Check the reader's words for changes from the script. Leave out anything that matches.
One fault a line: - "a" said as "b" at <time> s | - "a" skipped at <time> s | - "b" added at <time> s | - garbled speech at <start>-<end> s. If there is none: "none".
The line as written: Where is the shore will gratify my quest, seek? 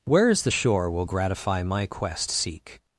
none